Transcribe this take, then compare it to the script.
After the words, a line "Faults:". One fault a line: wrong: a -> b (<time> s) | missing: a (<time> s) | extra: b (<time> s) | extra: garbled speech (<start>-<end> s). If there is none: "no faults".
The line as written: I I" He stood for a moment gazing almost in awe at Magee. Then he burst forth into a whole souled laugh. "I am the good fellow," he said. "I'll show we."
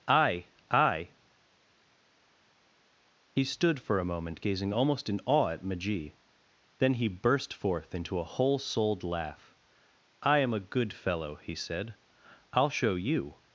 I I" He stood for a moment gazing almost in awe at Magee. Then he burst forth into a whole souled laugh. "I am a good fellow," he said. "I'll show you."
Faults:
wrong: the -> a (10.5 s)
wrong: we -> you (13.0 s)